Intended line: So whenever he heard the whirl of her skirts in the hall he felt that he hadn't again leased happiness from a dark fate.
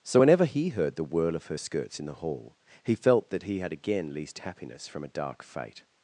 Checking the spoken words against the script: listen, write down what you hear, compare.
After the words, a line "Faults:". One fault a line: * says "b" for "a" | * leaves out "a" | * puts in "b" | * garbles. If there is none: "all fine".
So whenever he heard the whirl of her skirts in the hall he felt that he had again leased happiness from a dark fate.
Faults:
* says "had" for "hadn't"